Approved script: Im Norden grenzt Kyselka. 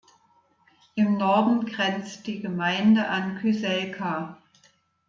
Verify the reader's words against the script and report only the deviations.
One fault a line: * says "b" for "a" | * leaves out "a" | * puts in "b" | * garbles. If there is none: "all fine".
* puts in "die Gemeinde an"